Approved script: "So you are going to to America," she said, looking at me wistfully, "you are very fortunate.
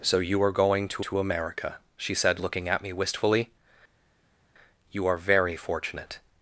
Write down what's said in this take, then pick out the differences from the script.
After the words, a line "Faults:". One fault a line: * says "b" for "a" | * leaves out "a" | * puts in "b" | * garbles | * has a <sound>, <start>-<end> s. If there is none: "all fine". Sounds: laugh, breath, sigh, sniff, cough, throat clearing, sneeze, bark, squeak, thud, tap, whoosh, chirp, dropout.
"So you are going to to America," she said, looking at me wistfully, "you are very fortunate.
Faults:
all fine